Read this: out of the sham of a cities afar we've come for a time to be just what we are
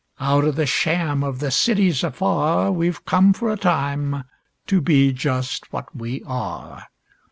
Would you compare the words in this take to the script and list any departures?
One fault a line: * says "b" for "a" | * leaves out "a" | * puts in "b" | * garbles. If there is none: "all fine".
* says "the" for "a"